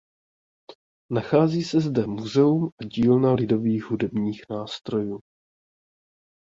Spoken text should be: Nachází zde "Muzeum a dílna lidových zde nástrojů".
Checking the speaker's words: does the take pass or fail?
fail